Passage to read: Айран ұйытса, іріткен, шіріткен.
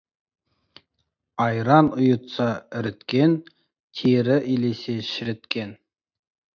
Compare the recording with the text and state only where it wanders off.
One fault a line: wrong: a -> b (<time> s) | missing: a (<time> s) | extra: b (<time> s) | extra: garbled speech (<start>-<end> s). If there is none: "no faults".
extra: тері илесе (4.0 s)